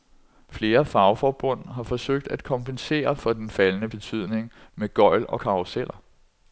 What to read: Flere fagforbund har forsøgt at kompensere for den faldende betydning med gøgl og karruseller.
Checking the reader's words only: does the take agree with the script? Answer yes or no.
yes